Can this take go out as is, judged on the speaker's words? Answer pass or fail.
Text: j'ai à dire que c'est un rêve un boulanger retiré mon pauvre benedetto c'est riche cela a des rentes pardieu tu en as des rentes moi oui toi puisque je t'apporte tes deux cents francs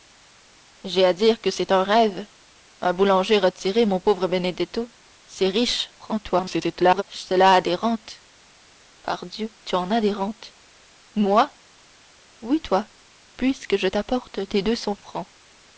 fail